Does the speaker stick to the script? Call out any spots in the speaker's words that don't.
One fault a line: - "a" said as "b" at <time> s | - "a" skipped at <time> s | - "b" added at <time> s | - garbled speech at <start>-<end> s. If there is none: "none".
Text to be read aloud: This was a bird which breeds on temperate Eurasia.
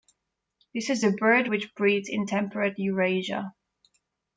- "was" said as "is" at 0.9 s
- "on" said as "in" at 2.1 s